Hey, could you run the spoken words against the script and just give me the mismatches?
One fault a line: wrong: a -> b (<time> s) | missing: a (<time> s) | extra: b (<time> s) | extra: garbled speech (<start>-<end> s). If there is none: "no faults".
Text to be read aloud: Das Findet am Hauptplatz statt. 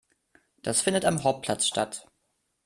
no faults